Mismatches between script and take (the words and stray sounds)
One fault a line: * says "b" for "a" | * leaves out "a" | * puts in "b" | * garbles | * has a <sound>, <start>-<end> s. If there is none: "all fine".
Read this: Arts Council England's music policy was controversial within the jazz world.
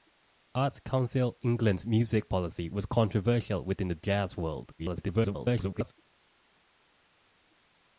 * garbles